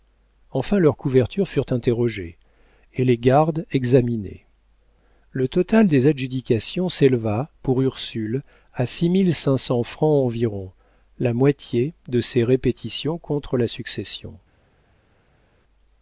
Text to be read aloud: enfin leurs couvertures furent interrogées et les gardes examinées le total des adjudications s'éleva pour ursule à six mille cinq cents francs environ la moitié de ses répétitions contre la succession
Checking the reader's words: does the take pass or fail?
pass